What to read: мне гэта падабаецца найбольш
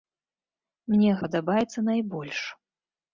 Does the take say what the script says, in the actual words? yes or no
no